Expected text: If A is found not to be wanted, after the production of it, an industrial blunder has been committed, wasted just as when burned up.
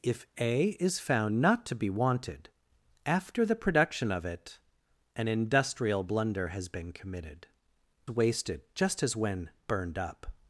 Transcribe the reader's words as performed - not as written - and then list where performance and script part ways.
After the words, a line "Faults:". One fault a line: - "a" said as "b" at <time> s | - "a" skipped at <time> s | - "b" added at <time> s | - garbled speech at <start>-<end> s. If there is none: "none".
If A is found not to be wanted, after the production of it, an industrial blunder has been committed, wasted just as when burned up.
Faults:
none